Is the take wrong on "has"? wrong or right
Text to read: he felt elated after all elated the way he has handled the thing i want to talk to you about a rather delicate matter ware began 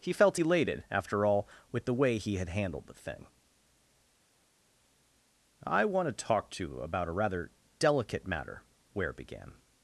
wrong